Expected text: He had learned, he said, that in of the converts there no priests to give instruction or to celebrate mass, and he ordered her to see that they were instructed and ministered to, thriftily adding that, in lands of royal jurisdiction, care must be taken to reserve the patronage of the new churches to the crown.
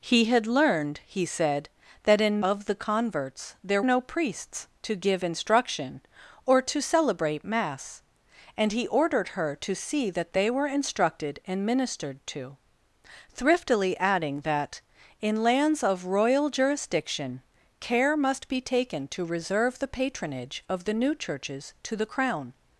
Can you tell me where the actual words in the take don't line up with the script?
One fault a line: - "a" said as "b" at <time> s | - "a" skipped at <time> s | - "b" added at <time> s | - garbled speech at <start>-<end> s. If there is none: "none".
none